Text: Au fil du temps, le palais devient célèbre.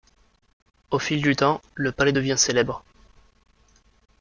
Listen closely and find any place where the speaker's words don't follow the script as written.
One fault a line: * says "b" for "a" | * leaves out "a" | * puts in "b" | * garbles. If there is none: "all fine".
all fine